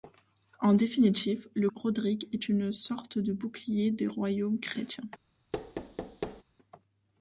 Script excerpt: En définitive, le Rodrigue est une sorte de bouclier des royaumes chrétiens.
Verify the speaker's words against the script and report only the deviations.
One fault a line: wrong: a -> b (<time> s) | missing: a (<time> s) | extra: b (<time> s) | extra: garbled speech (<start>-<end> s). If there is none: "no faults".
no faults